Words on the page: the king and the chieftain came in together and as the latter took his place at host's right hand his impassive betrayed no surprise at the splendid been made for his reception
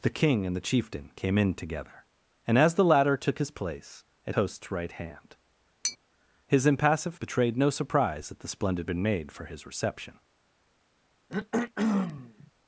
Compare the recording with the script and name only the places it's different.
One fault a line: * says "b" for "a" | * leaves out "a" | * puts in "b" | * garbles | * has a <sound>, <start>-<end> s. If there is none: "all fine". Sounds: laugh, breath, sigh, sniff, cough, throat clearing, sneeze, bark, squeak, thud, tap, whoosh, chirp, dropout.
* has a tap, 5.8-6.0 s
* has a throat clearing, 11.3-12.5 s